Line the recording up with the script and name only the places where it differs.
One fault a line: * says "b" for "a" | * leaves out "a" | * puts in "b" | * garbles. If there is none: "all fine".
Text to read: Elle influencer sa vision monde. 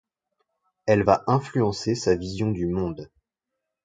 * puts in "va"
* puts in "du"